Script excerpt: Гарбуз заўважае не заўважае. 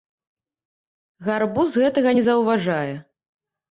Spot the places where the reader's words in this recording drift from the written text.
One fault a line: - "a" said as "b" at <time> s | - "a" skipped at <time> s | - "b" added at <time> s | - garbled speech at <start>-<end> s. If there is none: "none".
- "заўважае" said as "гэтага" at 1.9 s